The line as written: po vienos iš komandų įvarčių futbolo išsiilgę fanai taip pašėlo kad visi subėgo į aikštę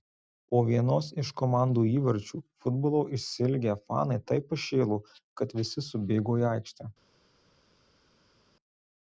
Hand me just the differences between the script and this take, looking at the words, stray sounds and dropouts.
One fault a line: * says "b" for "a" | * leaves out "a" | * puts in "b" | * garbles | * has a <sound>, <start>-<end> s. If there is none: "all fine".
all fine